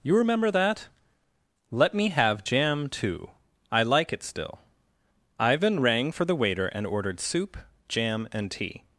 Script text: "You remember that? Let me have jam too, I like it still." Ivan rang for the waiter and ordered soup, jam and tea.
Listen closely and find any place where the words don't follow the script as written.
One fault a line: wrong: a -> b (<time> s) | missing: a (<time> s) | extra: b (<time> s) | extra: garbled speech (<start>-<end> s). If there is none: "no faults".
no faults